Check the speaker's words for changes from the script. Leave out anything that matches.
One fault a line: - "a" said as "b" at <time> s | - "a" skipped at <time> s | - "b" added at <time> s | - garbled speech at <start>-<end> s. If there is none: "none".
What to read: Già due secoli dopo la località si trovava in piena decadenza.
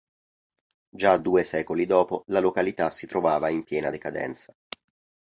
none